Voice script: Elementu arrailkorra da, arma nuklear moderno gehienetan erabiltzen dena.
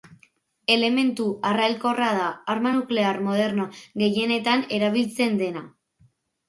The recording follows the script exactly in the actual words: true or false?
true